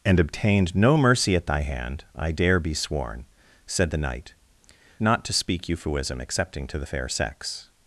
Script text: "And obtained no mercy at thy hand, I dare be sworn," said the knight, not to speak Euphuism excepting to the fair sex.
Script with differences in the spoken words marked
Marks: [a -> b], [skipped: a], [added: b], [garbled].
"And obtained no mercy at thy hand, I dare be sworn," said the knight, not to speak Euphuism excepting to the fair sex.